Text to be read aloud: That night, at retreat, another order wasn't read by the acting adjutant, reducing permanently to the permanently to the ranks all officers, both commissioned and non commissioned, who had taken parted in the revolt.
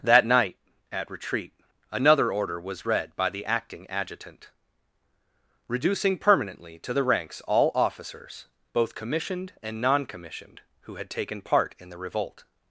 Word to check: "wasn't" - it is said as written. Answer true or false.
false